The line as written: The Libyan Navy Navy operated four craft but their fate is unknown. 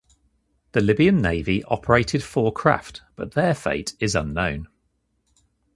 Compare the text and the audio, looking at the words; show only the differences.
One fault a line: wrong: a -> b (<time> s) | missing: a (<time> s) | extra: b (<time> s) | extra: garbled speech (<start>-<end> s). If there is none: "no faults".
missing: Navy (1.6 s)